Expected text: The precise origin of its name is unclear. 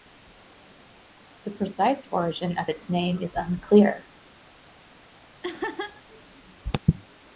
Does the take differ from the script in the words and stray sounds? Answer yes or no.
yes